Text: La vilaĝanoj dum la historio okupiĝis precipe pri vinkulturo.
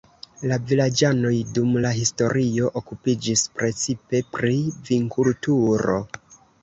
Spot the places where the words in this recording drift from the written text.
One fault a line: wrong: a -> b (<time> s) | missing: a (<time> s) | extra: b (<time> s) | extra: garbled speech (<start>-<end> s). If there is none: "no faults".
no faults